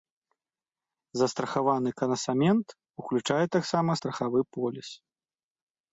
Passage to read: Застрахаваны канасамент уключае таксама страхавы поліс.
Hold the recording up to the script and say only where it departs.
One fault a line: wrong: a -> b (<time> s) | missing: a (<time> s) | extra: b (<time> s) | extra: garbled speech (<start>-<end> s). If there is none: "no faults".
no faults